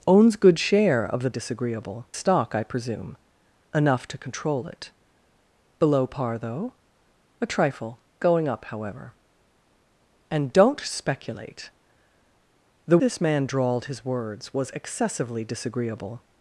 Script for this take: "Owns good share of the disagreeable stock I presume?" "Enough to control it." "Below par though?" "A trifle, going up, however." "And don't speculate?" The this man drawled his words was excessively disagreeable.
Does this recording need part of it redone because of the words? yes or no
no